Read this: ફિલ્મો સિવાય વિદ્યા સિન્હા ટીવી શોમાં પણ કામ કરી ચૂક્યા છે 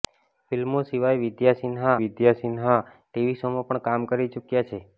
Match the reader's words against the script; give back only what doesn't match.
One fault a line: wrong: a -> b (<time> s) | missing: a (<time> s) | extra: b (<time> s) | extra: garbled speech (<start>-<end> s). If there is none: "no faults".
extra: વિદ્યા સિન્હા (2.0 s)